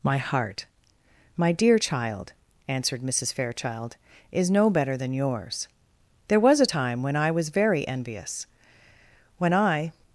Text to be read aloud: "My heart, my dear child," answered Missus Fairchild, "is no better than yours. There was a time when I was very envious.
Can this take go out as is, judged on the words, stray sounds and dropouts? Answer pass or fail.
fail